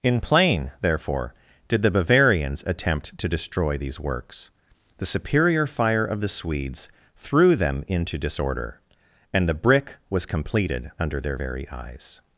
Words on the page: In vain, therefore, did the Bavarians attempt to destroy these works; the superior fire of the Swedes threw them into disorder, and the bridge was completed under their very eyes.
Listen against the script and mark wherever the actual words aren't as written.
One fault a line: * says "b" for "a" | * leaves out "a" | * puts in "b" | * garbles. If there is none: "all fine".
* says "plain" for "vain"
* says "brick" for "bridge"